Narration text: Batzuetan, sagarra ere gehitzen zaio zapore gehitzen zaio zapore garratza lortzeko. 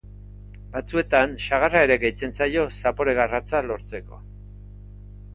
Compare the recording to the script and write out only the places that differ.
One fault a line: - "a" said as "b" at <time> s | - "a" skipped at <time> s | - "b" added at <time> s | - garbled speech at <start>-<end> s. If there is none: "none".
- "gehitzen zaio zapore" skipped at 3.1 s